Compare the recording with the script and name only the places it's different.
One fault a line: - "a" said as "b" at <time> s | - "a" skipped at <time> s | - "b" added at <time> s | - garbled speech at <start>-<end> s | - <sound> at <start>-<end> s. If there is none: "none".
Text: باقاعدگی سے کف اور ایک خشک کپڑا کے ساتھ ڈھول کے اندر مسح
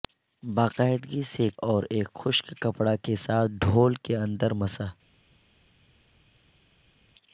- "کف" skipped at 1.5 s